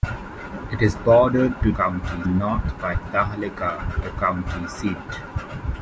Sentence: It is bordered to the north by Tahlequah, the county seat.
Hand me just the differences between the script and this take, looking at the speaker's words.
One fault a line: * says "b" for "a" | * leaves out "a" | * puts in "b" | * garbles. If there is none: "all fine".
* says "county" for "the"